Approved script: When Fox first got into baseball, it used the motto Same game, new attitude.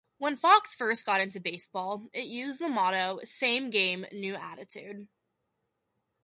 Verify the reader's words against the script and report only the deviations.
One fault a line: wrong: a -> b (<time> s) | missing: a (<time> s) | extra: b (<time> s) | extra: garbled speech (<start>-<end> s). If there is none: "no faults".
no faults